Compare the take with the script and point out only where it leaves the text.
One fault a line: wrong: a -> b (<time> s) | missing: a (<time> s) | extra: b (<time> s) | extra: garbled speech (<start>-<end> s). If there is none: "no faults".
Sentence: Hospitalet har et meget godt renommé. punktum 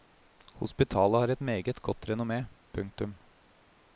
no faults